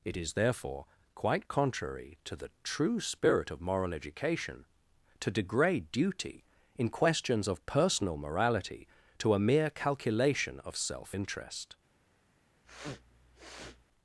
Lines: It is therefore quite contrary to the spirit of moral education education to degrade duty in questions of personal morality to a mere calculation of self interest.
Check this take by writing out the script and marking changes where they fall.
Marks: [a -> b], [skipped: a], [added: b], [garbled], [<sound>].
It is therefore quite contrary to the [added: true] spirit of moral education [skipped: education] to degrade duty in questions of personal morality to a mere calculation of self interest. [sniff]